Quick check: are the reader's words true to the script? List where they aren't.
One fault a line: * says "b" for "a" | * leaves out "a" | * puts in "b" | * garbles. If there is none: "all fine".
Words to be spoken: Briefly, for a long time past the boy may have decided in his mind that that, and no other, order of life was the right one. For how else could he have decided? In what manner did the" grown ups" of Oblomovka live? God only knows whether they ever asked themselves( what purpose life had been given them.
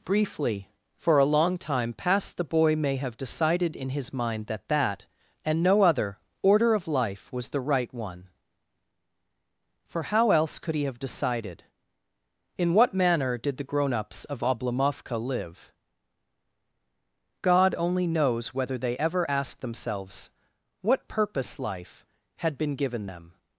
all fine